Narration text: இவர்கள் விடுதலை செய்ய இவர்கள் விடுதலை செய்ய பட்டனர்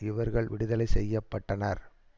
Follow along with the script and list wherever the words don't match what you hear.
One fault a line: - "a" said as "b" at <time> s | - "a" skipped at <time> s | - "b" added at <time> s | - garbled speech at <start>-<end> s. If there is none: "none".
- "இவர்கள் விடுதலை செய்ய" skipped at 1.2 s